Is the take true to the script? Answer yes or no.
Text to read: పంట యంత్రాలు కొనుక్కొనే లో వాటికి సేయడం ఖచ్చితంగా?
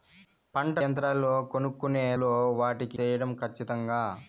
yes